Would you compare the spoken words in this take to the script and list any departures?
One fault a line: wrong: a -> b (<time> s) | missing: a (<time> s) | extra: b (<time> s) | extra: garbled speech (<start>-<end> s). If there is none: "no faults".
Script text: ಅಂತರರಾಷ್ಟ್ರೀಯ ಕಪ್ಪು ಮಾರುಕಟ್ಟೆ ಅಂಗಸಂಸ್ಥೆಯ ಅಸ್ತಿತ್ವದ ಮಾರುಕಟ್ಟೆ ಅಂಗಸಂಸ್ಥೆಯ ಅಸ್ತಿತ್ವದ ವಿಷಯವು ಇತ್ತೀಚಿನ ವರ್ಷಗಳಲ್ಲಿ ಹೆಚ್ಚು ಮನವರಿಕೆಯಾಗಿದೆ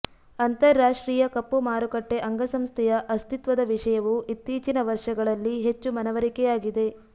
missing: ಮಾರುಕಟ್ಟೆ ಅಂಗಸಂಸ್ಥೆಯ ಅಸ್ತಿತ್ವದ (3.6 s)